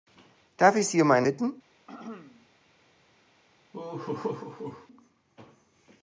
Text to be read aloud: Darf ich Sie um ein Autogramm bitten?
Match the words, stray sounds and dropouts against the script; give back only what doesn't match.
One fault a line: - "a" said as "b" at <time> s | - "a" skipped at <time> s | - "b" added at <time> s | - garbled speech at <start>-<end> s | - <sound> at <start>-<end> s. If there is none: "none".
- "Autogramm" skipped at 1.3 s
- throat clearing at 1.9-2.5 s
- laugh at 3.7-4.9 s